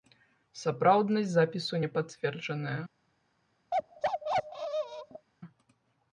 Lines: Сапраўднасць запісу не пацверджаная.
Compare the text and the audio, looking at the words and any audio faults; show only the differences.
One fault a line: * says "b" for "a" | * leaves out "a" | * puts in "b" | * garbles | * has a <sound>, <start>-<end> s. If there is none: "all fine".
* has a bark, 3.7-5.3 s